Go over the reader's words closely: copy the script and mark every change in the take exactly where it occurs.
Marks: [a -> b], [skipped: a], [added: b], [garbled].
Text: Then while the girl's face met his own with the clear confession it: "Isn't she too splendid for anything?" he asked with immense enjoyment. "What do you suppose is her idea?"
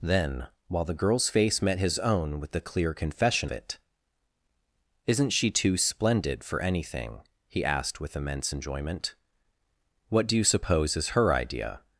Then while the girl's face met his own with the clear confession it: "Isn't she too splendid for anything?" he asked with immense enjoyment. "What do you suppose is her idea?"